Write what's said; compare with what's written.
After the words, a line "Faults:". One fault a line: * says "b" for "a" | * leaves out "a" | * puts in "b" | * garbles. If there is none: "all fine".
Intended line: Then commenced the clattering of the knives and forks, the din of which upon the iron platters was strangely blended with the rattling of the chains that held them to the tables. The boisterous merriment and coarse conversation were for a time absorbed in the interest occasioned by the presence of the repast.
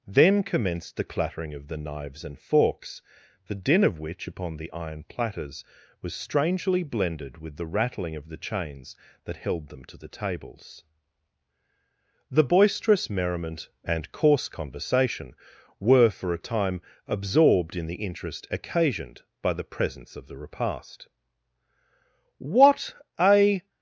Then commenced the clattering of the knives and forks, the din of which upon the iron platters was strangely blended with the rattling of the chains that held them to the tables. The boisterous merriment and coarse conversation were for a time absorbed in the interest occasioned by the presence of the repast. "What a
Faults:
* puts in "What a"